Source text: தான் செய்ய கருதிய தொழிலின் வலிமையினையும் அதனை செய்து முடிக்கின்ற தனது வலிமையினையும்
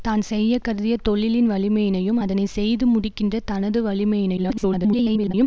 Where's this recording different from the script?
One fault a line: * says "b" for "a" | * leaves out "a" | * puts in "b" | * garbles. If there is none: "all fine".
* garbles